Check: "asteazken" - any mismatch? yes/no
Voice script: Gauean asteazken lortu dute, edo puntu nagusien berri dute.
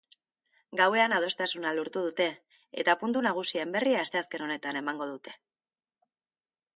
yes